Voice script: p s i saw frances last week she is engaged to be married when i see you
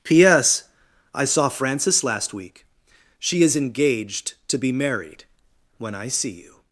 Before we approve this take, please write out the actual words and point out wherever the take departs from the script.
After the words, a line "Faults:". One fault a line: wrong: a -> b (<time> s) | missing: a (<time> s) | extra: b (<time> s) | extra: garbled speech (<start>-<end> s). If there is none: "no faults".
p s i saw frances last week she is engaged to be married when i see you
Faults:
no faults